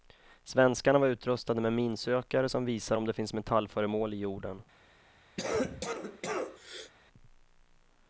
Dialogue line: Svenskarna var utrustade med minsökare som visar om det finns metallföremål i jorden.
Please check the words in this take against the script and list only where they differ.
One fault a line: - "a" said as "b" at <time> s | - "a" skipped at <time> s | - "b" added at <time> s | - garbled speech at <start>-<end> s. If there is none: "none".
none